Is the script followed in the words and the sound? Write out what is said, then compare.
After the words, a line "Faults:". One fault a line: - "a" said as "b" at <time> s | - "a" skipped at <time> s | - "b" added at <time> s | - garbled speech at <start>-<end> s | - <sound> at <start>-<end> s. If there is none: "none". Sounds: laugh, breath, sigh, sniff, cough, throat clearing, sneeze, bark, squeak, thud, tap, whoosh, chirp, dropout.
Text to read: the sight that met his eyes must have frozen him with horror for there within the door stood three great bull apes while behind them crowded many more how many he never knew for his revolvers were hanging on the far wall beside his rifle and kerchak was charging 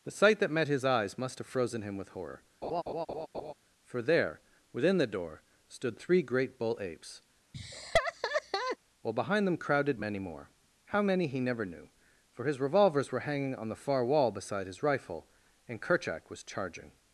the sight that met his eyes must have frozen him with horror for there within the door stood three great bull apes while behind them crowded many more how many he never knew for his revolvers were hanging on the far wall beside his rifle and kerchak was charging
Faults:
- laugh at 2.6-3.5 s
- laugh at 7.5-8.8 s